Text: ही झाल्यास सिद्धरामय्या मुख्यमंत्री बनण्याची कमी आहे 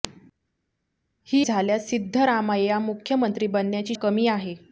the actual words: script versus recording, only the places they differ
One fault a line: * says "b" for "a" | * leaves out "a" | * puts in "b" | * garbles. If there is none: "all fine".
all fine